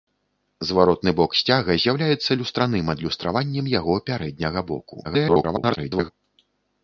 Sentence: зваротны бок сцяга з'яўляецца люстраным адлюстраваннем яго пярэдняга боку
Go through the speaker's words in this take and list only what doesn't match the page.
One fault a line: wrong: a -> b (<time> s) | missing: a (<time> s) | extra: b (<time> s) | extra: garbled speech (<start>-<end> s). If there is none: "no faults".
extra: garbled speech (5.0-6.1 s)